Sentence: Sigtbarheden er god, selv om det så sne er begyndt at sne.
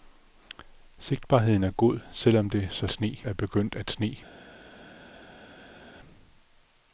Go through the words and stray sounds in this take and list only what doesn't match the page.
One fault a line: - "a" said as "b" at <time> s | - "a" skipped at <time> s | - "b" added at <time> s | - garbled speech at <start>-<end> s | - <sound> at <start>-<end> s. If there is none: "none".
none